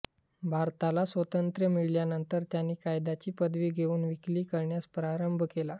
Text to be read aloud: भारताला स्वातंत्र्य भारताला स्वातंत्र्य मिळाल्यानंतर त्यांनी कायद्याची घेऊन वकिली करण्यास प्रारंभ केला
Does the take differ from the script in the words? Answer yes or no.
yes